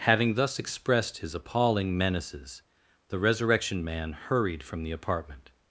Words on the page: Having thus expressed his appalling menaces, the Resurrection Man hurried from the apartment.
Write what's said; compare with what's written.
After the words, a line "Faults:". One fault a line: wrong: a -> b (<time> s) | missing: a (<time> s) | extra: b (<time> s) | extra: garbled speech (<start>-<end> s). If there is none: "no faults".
Having thus expressed his appalling menaces, the Resurrection Man hurried from the apartment.
Faults:
no faults